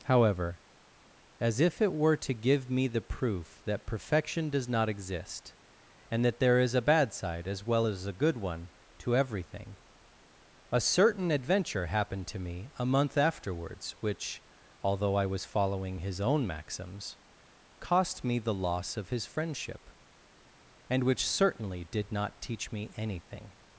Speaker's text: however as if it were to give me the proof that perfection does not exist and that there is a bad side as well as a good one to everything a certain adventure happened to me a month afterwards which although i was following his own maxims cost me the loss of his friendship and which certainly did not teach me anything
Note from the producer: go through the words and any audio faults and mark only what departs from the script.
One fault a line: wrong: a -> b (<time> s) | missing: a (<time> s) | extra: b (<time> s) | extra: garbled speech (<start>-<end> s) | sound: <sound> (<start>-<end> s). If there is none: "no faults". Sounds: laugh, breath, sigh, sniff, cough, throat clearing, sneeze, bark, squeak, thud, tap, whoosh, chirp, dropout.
no faults